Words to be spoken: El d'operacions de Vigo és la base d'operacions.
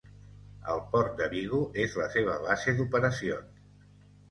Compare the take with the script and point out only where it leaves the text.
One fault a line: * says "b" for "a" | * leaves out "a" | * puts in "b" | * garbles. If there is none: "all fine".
* says "port" for "d'operacions"
* puts in "seva"